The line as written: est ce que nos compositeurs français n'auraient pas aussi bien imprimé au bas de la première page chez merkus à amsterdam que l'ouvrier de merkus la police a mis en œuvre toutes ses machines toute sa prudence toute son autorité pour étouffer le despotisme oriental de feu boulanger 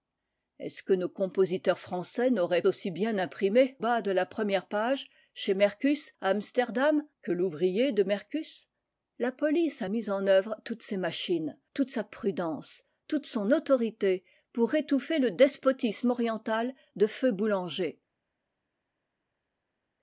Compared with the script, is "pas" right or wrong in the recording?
wrong